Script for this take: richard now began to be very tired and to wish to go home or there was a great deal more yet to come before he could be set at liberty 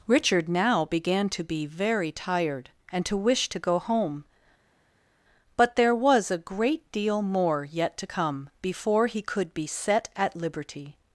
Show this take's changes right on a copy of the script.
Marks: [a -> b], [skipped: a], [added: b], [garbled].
richard now began to be very tired and to wish to go home [or -> but] there was a great deal more yet to come before he could be set at liberty